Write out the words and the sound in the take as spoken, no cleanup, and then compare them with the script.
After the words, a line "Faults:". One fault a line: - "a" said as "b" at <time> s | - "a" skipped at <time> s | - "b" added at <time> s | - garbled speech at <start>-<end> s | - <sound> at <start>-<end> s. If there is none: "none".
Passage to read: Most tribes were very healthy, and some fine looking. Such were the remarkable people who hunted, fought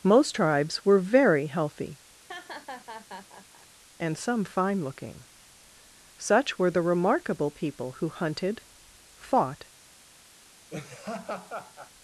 Most tribes were very healthy, and some fine looking. Such were the remarkable people who hunted, fought
Faults:
- laugh at 2.3-3.7 s
- laugh at 10.7-11.9 s